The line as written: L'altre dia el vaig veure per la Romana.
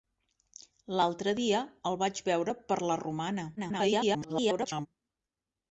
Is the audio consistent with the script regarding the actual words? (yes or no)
no